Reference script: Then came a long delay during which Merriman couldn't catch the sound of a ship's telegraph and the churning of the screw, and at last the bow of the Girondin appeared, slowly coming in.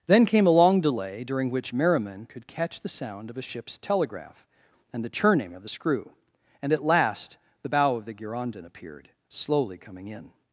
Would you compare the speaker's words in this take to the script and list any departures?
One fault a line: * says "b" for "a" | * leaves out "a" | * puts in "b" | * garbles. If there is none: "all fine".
* says "could" for "couldn't"